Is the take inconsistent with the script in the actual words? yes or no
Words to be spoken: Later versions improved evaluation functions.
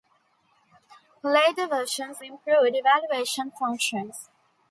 no